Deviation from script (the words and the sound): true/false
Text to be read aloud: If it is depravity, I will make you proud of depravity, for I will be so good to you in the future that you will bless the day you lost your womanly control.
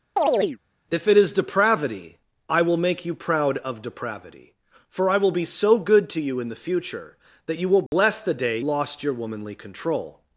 true